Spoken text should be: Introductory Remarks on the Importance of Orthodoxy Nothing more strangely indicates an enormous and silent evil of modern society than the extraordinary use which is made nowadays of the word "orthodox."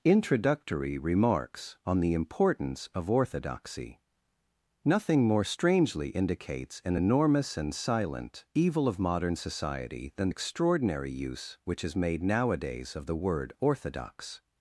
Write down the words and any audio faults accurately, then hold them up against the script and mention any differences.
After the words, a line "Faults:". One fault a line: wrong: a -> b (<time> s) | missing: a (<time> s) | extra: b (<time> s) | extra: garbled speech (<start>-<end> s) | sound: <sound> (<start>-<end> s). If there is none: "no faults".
Introductory Remarks on the Importance of Orthodoxy Nothing more strangely indicates an enormous and silent evil of modern society than extraordinary use which is made nowadays of the word "orthodox."
Faults:
missing: the (10.3 s)